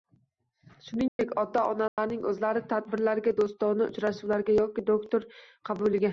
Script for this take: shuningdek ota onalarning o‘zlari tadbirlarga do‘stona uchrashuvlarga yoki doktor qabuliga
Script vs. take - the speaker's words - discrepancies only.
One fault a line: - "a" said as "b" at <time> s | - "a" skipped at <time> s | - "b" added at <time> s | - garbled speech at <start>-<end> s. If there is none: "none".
none